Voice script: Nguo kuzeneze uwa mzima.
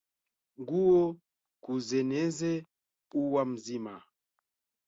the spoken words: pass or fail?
pass